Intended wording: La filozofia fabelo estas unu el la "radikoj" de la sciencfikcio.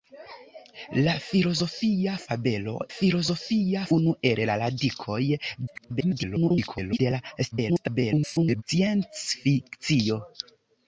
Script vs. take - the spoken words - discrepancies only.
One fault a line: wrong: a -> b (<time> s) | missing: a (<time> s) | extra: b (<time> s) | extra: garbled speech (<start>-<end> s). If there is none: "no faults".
wrong: estas -> filozofia (2.9 s)
extra: garbled speech (5.7-7.0 s)
extra: garbled speech (7.5-8.6 s)